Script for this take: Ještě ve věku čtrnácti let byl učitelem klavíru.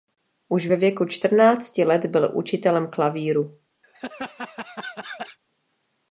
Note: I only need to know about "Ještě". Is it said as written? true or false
false